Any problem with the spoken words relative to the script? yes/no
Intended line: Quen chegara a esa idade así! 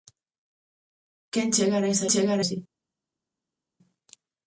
yes